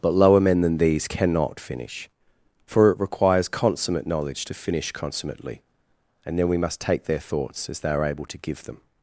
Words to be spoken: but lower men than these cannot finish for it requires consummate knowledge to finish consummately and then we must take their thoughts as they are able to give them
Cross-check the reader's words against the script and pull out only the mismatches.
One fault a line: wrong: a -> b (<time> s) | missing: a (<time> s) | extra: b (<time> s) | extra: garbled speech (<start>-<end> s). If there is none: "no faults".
no faults